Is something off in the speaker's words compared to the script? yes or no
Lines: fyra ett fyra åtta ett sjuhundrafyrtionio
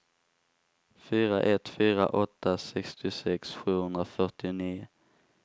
yes